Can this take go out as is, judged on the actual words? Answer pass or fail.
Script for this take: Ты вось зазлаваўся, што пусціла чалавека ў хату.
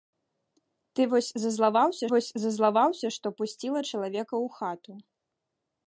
fail